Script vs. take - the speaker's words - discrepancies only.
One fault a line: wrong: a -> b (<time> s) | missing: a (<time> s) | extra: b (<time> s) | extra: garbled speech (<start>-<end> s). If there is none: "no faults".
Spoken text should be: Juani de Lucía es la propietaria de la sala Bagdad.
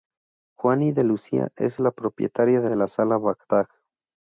extra: de (2.7 s)